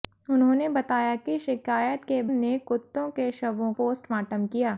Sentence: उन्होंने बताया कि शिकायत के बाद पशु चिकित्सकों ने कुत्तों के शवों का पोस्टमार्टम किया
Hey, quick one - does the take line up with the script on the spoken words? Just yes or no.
no